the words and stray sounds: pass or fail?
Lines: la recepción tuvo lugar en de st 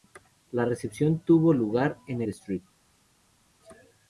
pass